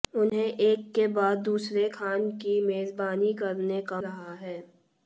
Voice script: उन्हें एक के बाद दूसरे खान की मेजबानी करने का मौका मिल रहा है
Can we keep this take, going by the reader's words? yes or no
no